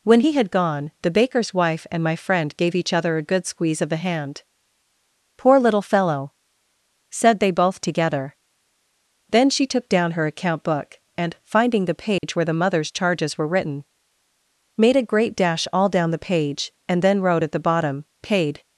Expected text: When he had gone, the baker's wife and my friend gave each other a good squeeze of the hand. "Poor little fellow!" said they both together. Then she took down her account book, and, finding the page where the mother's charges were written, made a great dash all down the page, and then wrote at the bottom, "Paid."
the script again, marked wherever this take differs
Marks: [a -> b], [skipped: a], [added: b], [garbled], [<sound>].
When he had gone, the baker's wife and my friend gave each other a good squeeze of the hand. "Poor little fellow!" said they both together. Then she took down her account book, and, finding the page [dropout] where the mother's charges were written, made a great dash all down the page, and then wrote at the bottom, "Paid."